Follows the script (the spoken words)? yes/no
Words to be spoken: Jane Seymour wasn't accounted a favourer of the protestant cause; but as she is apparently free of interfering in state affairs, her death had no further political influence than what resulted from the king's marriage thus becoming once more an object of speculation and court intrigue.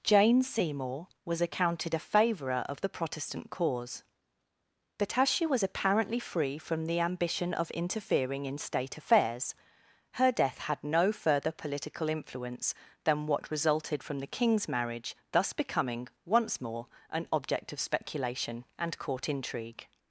no